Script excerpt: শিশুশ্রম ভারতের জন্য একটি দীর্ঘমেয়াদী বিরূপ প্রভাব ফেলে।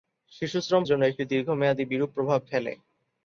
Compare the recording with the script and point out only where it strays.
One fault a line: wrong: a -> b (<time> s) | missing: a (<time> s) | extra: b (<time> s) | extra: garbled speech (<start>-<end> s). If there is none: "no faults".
missing: ভারতের (0.8 s)